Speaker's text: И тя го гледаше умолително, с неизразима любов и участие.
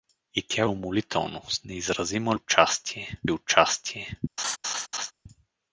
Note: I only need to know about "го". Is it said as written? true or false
false